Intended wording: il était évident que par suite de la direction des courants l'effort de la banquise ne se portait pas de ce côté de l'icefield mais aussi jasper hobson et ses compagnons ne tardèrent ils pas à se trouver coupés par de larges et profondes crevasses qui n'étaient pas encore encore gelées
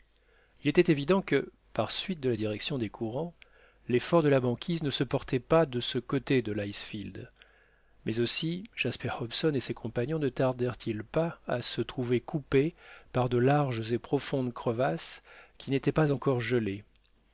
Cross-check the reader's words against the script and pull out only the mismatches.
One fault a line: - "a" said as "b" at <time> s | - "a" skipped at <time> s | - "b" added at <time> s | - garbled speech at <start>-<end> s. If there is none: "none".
- "encore" skipped at 16.4 s